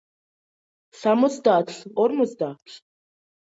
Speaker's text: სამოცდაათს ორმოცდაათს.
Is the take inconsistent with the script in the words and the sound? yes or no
no